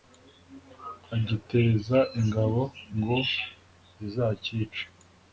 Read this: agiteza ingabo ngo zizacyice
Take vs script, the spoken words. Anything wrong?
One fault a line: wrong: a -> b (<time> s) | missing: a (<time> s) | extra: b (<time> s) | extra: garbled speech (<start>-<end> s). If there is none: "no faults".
no faults